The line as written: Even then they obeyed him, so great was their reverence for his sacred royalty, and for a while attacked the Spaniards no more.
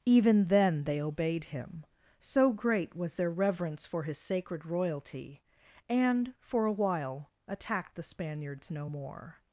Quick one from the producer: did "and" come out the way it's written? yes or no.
yes